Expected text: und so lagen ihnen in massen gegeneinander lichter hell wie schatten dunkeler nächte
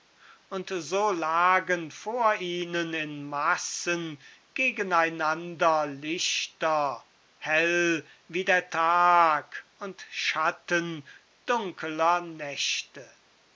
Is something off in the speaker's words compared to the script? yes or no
yes